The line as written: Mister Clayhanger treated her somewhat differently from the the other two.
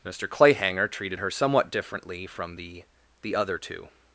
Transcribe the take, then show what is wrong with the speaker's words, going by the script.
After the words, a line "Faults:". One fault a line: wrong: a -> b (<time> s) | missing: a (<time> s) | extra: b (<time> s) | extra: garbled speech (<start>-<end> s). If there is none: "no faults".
Mister Clayhanger treated her somewhat differently from the the other two.
Faults:
no faults